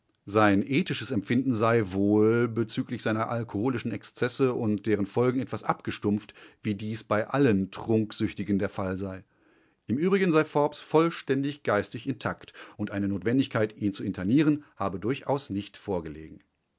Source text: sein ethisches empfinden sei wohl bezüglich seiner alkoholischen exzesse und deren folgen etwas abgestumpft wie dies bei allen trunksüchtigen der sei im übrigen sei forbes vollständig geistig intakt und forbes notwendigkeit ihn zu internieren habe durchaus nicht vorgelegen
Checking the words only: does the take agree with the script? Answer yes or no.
no